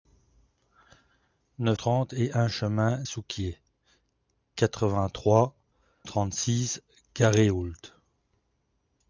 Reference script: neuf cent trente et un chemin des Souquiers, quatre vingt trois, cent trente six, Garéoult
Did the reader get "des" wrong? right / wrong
wrong